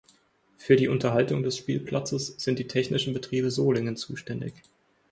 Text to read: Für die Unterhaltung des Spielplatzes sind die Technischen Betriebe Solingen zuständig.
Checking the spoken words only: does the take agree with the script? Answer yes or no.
yes